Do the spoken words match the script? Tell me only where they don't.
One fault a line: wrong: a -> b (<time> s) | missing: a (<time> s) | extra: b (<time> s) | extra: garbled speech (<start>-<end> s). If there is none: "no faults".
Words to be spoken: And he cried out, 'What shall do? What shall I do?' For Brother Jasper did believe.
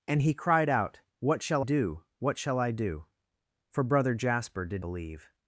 no faults